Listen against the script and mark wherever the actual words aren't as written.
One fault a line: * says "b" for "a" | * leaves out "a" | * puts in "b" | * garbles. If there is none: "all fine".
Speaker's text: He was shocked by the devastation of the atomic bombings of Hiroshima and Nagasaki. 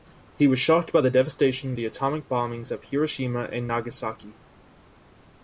all fine